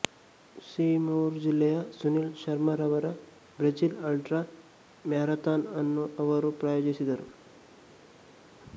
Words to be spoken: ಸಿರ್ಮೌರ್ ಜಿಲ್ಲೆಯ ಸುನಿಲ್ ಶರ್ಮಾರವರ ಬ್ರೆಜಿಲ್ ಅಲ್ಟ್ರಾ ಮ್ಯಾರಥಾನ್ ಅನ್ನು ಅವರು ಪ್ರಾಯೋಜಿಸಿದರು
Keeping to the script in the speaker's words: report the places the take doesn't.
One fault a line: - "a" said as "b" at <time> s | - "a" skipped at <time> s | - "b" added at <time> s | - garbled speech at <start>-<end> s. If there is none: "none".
none